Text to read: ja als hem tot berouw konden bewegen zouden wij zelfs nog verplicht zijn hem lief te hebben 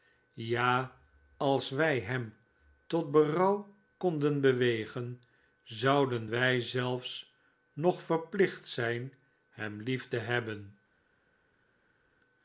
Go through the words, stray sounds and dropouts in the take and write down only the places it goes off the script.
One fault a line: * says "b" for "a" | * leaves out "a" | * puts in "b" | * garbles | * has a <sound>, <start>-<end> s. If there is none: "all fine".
* puts in "wij"